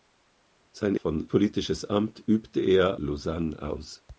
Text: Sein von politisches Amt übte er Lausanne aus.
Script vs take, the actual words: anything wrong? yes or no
no